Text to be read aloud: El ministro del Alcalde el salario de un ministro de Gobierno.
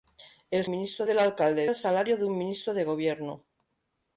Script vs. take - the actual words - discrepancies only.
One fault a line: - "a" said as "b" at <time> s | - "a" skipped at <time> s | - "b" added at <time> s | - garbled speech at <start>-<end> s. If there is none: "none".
none